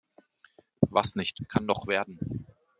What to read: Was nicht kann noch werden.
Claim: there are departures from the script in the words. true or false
false